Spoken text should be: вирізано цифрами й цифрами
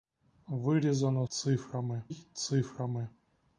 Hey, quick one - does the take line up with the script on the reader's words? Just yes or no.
yes